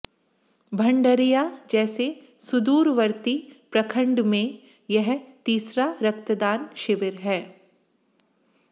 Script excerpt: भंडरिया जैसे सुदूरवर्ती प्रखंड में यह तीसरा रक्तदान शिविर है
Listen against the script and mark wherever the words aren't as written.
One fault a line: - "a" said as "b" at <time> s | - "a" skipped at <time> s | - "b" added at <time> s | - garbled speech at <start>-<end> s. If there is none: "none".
none